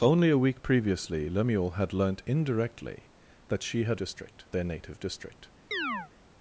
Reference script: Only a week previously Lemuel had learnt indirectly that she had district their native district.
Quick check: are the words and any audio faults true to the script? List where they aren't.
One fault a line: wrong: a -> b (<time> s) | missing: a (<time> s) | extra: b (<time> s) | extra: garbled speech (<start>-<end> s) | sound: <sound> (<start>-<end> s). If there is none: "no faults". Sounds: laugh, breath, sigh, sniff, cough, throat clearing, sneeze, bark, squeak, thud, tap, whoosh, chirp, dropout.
sound: chirp (5.7-6.1 s)